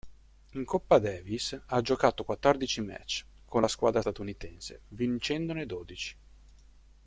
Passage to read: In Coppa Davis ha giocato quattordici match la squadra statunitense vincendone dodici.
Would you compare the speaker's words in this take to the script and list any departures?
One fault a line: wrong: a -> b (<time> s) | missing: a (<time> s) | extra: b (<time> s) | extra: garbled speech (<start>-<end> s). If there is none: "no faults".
extra: con (3.5 s)